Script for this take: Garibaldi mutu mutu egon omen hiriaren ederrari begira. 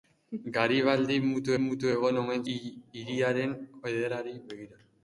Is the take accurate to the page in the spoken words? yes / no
yes